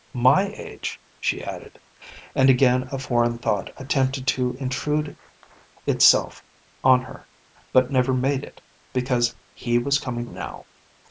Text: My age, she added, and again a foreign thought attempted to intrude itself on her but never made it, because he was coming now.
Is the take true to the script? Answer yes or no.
yes